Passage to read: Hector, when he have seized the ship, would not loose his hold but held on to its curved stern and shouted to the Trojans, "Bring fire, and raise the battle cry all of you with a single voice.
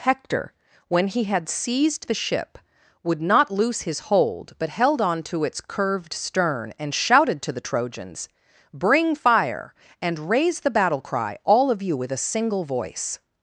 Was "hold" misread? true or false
false